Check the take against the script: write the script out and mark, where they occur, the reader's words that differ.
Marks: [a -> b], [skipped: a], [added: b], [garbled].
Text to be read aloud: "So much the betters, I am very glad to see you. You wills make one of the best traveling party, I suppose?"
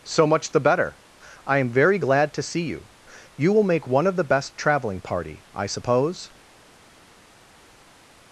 "So much the [betters, -> better] I am very glad to see you. You [wills -> will] make one of the best traveling party, I suppose?"